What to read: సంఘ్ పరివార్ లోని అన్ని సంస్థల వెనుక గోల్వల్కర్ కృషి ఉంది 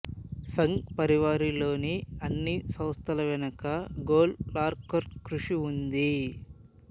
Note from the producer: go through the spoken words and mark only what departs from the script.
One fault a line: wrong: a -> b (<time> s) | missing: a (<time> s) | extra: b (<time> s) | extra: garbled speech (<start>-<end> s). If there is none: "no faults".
no faults